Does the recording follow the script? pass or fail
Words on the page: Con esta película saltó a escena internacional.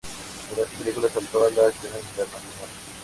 fail